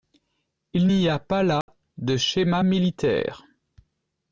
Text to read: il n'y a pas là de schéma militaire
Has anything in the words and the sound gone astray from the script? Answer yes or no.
yes